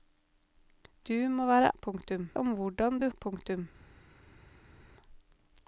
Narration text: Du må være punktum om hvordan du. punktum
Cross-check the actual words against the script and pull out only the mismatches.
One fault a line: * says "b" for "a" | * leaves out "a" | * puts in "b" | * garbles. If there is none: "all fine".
all fine